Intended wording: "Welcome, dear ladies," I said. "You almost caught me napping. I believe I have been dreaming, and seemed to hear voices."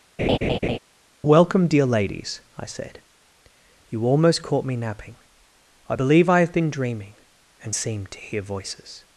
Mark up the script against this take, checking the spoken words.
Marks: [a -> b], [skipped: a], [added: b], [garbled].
"Welcome, dear ladies," I said. "You almost caught me napping. I believe I have been dreaming, and seemed to hear voices."